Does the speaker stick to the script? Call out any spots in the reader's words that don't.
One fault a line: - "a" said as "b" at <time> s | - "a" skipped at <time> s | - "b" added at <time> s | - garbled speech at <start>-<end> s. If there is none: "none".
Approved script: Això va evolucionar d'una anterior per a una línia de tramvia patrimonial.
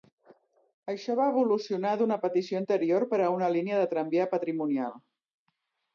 - "petició" added at 2.2 s